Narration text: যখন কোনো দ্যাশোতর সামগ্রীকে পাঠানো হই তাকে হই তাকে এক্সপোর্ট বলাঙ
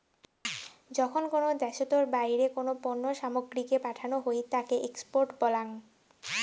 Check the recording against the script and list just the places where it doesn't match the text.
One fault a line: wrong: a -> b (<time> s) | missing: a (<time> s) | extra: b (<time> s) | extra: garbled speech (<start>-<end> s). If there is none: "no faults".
extra: বাইরে কোনো পণ্য (2.1 s)
missing: হই তাকে (4.7 s)